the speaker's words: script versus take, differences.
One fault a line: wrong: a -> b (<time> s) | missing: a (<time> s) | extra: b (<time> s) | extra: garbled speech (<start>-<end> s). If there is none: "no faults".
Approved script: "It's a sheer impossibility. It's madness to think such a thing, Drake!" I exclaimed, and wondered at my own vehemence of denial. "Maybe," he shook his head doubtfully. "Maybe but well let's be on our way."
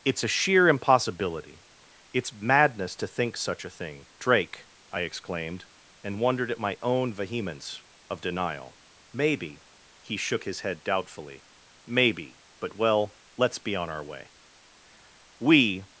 extra: We (15.4 s)